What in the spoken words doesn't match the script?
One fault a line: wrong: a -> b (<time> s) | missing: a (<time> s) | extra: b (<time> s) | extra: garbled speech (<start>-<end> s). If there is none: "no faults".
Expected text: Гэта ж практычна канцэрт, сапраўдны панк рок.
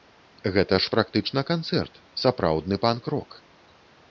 no faults